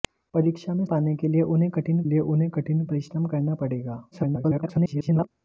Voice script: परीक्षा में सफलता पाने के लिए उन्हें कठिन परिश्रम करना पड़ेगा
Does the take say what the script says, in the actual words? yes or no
no